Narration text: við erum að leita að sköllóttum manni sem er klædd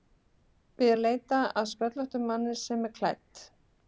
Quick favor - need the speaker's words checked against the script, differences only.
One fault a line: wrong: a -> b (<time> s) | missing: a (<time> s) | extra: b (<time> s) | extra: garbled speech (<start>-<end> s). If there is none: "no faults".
missing: erum (0.9 s)